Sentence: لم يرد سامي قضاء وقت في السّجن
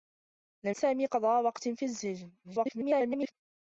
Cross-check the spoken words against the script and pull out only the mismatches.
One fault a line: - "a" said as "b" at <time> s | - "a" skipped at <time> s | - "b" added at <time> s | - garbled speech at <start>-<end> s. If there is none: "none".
- "يرد" skipped at 0.8 s
- garbled speech at 2.4-3.3 s